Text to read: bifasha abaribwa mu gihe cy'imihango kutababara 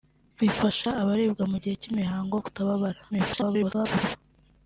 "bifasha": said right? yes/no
yes